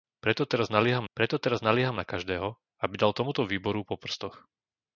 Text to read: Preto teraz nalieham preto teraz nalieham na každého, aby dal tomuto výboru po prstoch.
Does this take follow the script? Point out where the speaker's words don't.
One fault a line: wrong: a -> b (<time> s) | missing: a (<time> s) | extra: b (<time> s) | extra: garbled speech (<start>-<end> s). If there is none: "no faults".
no faults